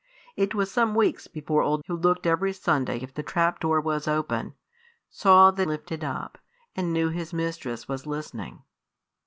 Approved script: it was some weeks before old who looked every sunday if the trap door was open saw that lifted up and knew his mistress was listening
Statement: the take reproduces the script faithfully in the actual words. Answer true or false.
true